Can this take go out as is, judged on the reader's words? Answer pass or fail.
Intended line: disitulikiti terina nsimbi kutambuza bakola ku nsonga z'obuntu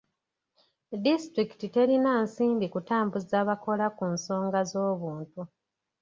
pass